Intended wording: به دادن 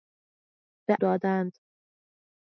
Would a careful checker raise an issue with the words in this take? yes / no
no